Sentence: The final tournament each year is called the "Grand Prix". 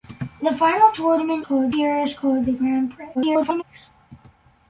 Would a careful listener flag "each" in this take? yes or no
yes